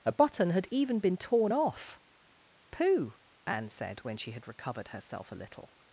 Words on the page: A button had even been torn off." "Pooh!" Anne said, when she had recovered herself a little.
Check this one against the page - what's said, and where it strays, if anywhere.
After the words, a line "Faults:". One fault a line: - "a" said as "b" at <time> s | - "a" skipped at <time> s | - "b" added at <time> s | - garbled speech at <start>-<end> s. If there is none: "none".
A button had even been torn off." "Pooh!" Anne said, when she had recovered herself a little.
Faults:
none